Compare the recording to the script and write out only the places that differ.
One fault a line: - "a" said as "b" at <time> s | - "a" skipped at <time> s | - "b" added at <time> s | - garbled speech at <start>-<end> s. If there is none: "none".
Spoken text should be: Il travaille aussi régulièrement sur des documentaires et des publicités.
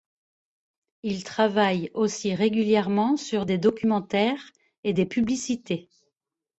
none